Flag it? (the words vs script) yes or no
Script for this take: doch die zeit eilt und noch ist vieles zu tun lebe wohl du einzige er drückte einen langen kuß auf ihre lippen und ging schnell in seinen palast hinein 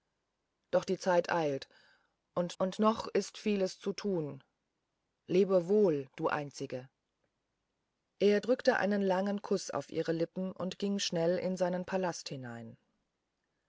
yes